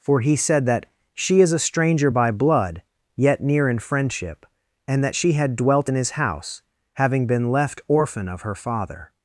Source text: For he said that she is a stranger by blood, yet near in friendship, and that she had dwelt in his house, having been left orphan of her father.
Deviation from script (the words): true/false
false